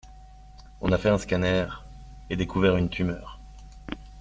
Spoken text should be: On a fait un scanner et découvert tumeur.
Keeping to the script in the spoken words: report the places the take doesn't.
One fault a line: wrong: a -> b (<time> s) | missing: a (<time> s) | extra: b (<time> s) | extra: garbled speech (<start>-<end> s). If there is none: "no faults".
extra: une (2.8 s)